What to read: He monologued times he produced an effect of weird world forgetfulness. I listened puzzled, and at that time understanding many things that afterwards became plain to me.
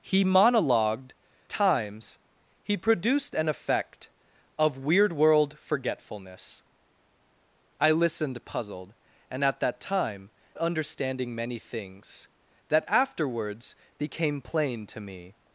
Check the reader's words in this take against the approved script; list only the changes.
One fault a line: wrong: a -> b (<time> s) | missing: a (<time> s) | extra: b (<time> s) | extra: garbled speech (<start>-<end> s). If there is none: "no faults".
no faults